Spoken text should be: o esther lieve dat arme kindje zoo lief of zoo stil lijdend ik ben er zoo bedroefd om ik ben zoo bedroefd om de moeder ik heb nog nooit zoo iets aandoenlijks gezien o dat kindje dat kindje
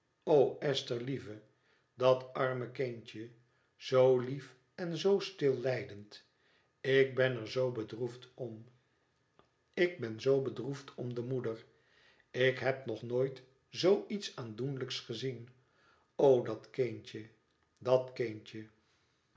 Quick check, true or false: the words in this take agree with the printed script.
false